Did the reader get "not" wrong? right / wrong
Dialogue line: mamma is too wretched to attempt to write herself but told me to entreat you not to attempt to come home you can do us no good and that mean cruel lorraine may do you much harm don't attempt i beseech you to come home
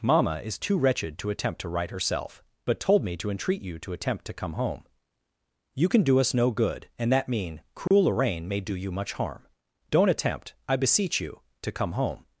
wrong